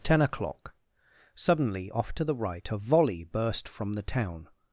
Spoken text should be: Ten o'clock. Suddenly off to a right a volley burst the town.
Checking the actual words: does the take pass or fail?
fail